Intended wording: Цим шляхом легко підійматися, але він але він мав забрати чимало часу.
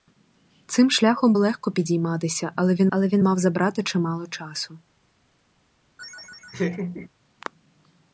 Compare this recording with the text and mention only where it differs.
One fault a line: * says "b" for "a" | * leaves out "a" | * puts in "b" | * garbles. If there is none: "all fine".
all fine